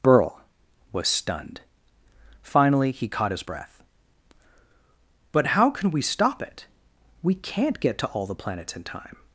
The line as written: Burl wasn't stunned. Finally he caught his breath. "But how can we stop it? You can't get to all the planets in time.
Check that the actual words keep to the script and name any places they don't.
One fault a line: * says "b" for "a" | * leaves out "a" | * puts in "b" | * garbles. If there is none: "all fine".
* says "was" for "wasn't"
* says "We" for "You"